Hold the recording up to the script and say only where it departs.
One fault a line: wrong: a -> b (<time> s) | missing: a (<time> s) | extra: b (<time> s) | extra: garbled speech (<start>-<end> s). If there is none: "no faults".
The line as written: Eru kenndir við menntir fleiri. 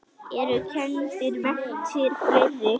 missing: við (1.4 s)